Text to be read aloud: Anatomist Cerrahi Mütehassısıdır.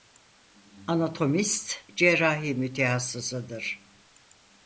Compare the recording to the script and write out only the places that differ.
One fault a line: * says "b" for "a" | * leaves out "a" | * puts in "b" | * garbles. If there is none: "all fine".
all fine